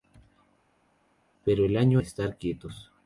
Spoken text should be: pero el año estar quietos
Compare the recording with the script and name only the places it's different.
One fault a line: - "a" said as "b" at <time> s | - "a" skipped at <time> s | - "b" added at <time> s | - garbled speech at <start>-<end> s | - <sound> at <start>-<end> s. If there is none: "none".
none